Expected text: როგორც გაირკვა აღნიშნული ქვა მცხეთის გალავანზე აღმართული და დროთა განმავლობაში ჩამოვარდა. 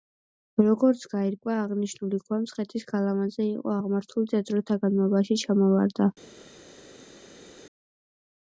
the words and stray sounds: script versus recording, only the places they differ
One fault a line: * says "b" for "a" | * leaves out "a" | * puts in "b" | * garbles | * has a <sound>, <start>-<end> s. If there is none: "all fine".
* puts in "იყო"